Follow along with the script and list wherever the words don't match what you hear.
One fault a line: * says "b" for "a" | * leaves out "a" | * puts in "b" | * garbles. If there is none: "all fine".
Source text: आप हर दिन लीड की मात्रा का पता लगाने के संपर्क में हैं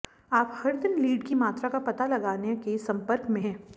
all fine